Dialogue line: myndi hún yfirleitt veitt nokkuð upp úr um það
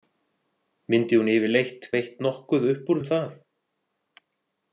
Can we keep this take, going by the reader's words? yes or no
yes